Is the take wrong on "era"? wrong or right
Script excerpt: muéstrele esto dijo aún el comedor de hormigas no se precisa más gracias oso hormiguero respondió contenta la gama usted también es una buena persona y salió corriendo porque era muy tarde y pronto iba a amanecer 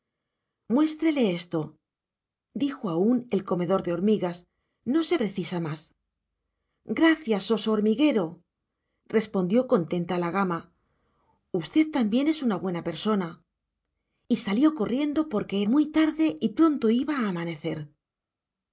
wrong